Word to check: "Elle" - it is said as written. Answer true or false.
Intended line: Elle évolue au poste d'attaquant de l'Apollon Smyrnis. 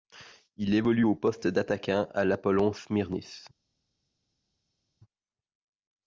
false